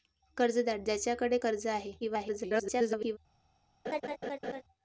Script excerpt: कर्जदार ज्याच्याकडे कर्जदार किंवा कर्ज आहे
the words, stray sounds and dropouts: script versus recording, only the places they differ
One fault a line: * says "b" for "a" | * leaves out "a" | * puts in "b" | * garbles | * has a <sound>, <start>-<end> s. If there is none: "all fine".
* leaves out "कर्जदार किंवा"
* garbles
* has a laugh, 3.8-4.6 s